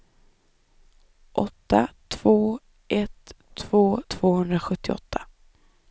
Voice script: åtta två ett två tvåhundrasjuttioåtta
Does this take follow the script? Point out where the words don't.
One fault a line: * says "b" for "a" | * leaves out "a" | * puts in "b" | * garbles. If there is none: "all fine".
all fine